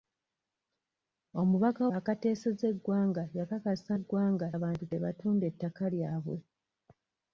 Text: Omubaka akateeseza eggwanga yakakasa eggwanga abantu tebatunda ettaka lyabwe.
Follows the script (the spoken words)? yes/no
yes